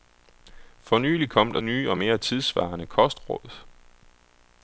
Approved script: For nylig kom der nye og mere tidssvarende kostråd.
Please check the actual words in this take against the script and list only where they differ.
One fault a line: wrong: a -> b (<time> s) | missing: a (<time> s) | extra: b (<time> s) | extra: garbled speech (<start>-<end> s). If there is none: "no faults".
no faults